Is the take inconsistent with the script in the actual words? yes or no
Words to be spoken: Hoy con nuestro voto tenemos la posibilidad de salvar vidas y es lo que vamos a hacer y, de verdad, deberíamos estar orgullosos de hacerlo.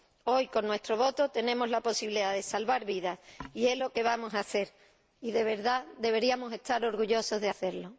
no